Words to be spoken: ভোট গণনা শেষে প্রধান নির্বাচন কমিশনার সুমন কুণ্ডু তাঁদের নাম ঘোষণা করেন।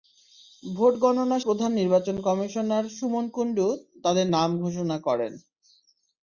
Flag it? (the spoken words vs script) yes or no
yes